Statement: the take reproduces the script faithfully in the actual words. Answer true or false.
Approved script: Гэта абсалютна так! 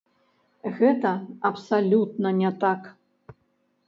false